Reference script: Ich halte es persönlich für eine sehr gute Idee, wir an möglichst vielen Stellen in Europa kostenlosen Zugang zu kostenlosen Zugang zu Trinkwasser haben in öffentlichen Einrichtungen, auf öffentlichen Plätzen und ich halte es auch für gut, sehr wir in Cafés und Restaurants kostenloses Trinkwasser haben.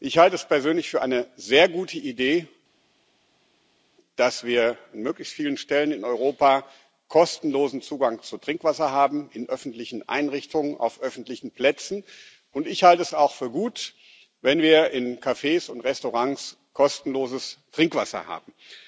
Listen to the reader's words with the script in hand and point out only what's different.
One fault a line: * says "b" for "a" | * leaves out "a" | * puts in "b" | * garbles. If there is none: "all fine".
* puts in "dass"
* leaves out "kostenlosen Zugang zu"
* says "wenn" for "sehr"